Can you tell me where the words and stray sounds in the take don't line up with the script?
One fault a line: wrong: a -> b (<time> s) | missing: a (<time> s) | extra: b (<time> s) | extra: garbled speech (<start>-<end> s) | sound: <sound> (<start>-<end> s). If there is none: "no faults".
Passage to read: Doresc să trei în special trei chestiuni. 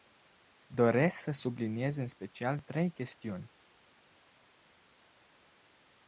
wrong: trei -> subliniez (1.3 s)